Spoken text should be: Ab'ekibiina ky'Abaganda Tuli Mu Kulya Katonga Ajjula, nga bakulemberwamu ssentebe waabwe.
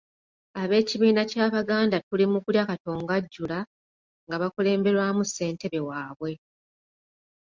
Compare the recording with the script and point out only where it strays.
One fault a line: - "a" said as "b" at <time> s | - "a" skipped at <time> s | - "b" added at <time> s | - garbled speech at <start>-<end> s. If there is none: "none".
none